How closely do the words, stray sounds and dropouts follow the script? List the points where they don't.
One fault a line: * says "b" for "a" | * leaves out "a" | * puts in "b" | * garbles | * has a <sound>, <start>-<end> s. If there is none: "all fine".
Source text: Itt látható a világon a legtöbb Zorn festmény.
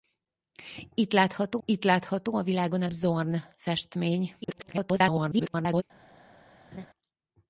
* puts in "itt látható"
* leaves out "legtöbb"
* garbles
* has a laugh, 6.7-6.9 s